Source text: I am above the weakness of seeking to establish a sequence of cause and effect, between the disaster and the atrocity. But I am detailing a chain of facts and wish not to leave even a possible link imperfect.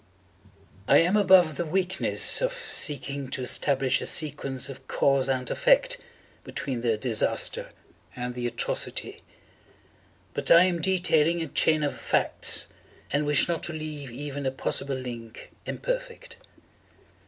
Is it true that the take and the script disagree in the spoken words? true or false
false